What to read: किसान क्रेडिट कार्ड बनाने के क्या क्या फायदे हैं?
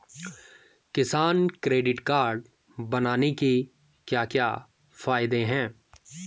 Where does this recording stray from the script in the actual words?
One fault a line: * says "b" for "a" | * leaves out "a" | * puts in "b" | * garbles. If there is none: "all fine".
all fine